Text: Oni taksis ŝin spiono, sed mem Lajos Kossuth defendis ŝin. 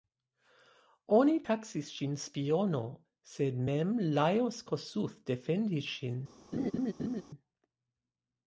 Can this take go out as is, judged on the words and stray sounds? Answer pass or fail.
fail